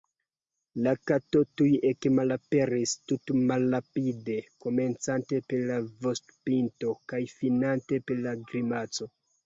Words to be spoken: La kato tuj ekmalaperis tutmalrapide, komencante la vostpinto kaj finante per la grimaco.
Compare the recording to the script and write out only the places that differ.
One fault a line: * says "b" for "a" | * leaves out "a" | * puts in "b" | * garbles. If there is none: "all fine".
* puts in "per"